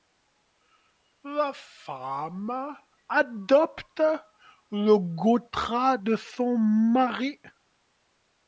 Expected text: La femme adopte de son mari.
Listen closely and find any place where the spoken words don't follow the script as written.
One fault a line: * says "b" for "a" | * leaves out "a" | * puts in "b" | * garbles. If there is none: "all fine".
* puts in "le gotra"